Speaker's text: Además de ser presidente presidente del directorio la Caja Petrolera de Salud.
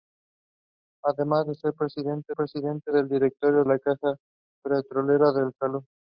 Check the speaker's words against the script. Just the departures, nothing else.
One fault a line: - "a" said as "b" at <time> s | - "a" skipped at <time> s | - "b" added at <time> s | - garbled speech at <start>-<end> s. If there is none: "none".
none